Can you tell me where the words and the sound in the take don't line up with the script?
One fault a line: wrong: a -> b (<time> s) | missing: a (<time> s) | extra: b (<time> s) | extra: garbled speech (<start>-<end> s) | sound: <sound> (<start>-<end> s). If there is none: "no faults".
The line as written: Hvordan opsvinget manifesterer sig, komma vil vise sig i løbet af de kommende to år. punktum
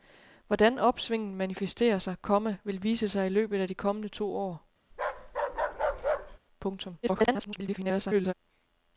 sound: bark (4.9-6.4 s)
extra: garbled speech (7.0-8.3 s)